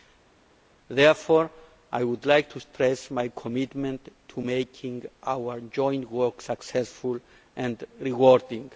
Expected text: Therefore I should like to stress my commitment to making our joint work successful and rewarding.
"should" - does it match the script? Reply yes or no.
no